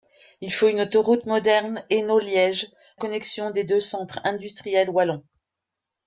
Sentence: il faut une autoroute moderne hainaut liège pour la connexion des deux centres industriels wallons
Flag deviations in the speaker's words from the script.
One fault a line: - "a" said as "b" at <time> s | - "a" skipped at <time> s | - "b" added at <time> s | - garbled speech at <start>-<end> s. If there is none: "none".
- "pour la" skipped at 2.7 s